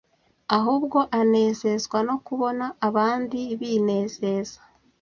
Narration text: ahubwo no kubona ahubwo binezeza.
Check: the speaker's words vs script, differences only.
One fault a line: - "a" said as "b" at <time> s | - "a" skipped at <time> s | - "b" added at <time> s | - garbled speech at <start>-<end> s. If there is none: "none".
- "anezezwa" added at 1.2 s
- "ahubwo" said as "abandi" at 2.9 s